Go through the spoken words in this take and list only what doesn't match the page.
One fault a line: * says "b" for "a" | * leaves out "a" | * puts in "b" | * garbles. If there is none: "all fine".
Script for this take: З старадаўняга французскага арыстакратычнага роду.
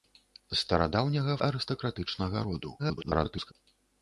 * leaves out "французскага"
* garbles